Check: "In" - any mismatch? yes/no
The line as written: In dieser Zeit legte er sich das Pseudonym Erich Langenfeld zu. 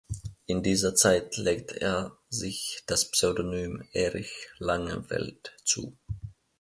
no